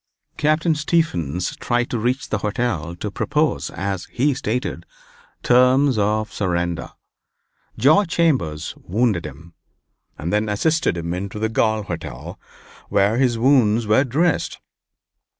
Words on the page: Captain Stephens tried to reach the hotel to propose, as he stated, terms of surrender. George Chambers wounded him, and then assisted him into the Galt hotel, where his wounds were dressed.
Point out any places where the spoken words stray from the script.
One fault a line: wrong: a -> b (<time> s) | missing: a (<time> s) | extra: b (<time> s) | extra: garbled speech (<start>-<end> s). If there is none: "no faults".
no faults